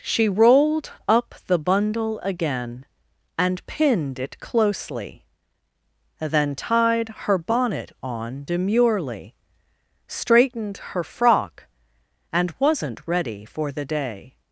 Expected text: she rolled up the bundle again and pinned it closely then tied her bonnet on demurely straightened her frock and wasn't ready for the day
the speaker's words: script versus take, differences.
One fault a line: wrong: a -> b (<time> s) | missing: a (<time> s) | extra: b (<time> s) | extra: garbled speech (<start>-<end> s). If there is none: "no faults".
no faults